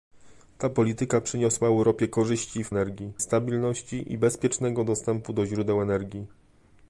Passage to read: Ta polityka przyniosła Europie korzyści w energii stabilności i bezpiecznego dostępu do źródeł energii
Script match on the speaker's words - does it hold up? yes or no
yes